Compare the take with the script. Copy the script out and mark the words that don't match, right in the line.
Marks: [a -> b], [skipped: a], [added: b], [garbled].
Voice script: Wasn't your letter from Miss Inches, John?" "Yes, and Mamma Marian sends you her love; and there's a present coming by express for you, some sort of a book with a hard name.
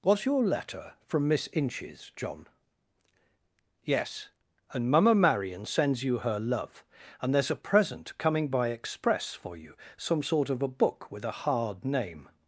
[Wasn't -> Was] your letter from Miss Inches, John?" "Yes, and Mamma Marian sends you her love; and there's a present coming by express for you, some sort of a book with a hard name.